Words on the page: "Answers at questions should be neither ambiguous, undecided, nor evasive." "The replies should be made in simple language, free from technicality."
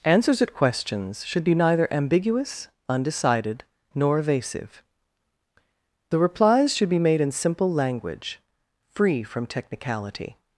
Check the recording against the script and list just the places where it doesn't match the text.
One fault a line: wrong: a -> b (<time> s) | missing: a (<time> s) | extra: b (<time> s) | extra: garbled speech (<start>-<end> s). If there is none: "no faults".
no faults